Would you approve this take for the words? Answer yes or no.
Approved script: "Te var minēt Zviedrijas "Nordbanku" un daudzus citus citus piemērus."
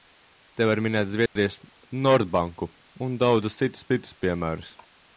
yes